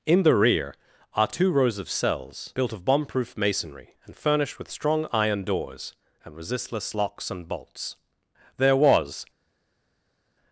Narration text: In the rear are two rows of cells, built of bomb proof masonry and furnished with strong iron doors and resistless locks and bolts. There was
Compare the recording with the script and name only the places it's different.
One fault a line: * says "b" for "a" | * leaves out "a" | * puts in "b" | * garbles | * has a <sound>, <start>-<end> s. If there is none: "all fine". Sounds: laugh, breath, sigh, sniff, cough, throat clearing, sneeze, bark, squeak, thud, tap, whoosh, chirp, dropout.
all fine